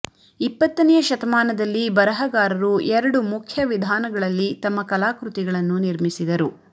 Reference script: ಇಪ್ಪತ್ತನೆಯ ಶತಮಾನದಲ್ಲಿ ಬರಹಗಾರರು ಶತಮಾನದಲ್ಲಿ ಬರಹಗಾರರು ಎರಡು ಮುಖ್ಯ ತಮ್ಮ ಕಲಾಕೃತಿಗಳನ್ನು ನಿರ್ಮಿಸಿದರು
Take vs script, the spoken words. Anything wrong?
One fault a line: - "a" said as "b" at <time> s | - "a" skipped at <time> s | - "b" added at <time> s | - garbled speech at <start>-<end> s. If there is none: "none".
- "ಶತಮಾನದಲ್ಲಿ ಬರಹಗಾರರು" skipped at 2.7 s
- "ವಿಧಾನಗಳಲ್ಲಿ" added at 3.6 s